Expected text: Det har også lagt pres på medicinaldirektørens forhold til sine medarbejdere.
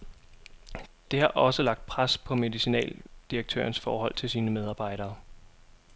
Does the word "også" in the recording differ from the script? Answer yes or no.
no